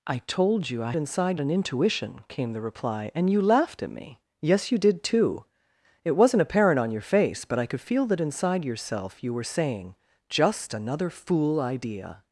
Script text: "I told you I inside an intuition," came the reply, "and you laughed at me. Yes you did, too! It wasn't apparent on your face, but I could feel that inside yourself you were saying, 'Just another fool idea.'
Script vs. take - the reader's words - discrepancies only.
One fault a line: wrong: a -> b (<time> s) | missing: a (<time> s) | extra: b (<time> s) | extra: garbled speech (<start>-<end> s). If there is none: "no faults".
no faults